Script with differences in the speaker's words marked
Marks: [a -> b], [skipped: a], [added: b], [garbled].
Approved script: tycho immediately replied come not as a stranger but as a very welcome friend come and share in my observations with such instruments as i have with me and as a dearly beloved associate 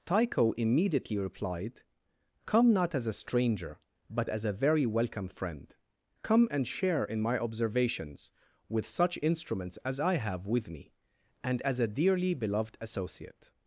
tycho immediately replied come not as a stranger but as a very welcome friend come and share in my observations with such instruments as i have with me and as a dearly beloved associate